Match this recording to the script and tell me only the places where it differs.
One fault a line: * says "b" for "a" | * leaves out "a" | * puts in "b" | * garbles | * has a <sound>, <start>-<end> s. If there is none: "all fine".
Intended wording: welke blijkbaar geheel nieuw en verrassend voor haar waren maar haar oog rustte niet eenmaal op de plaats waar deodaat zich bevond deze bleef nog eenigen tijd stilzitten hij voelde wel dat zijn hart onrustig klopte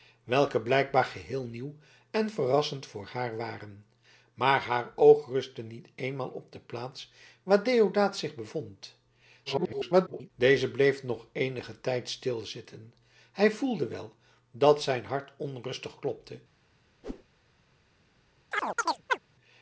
* garbles
* has a whoosh, 17.0-17.2 s
* has a chirp, 18.5-19.2 s